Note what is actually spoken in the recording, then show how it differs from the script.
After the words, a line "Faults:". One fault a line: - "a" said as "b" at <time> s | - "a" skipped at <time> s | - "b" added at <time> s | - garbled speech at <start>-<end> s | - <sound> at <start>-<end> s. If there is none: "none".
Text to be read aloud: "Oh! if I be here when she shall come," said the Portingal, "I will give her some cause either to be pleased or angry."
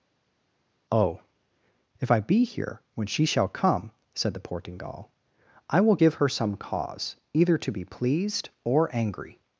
"Oh! if I be here when she shall come," said the Portingal, "I will give her some cause either to be pleased or angry."
Faults:
none